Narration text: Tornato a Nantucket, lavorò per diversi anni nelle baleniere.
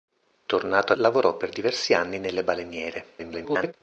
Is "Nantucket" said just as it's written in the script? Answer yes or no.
no